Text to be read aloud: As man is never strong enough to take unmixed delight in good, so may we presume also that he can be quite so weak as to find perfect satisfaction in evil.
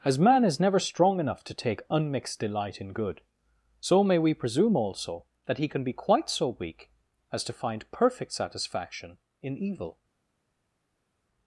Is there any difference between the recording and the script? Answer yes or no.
no